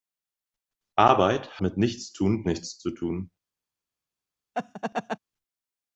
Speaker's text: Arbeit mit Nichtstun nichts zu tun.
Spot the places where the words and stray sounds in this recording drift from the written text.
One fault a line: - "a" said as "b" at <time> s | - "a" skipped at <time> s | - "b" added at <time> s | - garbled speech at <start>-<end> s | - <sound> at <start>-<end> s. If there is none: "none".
- laugh at 4.5-5.2 s